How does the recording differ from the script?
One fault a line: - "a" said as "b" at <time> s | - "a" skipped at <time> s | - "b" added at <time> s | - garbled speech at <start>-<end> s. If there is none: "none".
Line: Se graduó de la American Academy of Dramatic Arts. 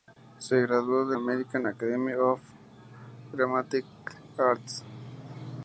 - "la" skipped at 1.1 s